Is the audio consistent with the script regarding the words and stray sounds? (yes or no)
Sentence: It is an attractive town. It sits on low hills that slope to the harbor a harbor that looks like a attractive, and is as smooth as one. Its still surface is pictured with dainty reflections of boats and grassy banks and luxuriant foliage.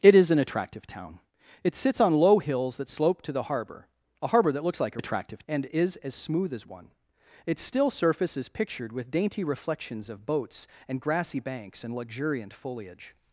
yes